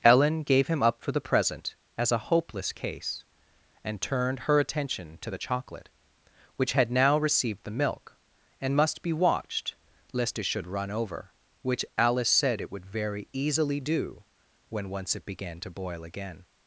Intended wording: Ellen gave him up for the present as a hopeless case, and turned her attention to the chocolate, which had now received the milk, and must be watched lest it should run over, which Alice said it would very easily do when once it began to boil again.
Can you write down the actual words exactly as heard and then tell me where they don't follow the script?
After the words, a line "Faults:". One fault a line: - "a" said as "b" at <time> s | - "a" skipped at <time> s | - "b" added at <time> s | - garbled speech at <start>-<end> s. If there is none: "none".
Ellen gave him up for the present as a hopeless case, and turned her attention to the chocolate, which had now received the milk, and must be watched lest it should run over, which Alice said it would very easily do when once it began to boil again.
Faults:
none